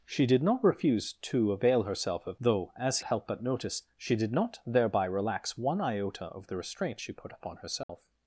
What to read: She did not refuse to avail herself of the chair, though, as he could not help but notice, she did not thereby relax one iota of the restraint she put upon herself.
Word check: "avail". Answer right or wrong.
right